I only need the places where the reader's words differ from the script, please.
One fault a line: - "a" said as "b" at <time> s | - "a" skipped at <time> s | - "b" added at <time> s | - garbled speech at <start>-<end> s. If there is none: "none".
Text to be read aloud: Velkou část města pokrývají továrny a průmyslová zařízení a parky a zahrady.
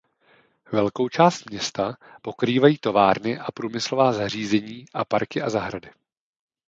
none